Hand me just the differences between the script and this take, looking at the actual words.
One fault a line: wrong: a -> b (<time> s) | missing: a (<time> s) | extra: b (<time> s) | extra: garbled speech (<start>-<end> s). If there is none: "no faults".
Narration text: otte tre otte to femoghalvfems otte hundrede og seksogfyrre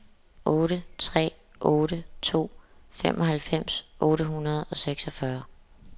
no faults